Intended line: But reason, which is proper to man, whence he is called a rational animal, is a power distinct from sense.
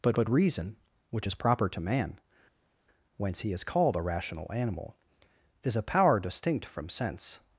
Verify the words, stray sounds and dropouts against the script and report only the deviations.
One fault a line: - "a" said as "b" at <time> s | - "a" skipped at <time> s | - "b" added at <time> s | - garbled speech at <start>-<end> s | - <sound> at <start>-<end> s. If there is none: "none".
- "but" added at 0.1 s